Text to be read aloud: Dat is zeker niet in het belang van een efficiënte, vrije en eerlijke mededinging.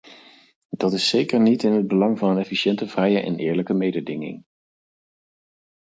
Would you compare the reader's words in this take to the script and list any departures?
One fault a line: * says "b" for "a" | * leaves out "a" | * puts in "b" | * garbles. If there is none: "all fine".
all fine